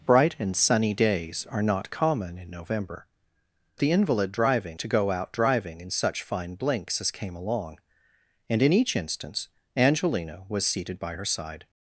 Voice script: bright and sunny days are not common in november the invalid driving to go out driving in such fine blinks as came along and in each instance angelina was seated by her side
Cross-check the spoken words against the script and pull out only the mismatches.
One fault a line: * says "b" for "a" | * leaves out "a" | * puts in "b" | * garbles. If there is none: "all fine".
all fine